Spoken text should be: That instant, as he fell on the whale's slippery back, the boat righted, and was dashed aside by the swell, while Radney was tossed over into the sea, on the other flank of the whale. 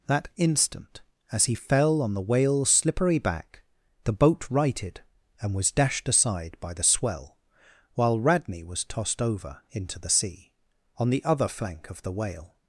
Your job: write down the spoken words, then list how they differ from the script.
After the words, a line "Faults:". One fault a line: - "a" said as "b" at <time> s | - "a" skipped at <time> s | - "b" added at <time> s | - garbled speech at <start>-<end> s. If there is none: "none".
That instant, as he fell on the whale's slippery back, the boat righted, and was dashed aside by the swell, while Radney was tossed over into the sea, on the other flank of the whale.
Faults:
none